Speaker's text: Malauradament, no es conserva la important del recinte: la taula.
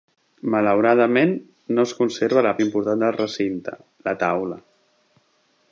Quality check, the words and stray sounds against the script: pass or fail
pass